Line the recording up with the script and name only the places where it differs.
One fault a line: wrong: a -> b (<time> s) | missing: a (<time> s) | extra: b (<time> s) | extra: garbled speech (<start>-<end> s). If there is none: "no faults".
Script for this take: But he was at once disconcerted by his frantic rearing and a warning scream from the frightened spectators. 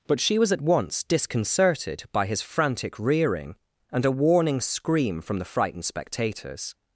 wrong: he -> she (0.2 s)